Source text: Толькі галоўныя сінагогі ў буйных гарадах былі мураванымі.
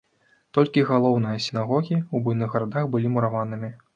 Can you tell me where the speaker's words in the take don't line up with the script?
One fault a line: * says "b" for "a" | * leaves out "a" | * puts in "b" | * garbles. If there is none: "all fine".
all fine